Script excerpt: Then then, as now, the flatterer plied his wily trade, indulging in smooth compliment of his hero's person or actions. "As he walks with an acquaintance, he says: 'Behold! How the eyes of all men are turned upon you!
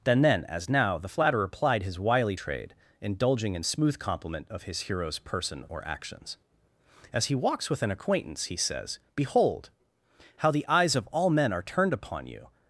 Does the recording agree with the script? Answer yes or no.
yes